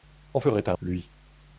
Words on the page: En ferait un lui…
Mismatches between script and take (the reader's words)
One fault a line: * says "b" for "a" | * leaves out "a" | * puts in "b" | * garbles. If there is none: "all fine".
all fine